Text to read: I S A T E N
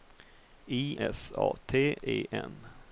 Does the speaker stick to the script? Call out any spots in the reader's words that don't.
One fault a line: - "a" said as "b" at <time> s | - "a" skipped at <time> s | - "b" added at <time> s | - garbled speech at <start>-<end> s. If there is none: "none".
none